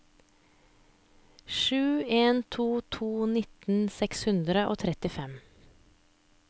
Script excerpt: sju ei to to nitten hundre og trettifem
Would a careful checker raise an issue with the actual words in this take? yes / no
yes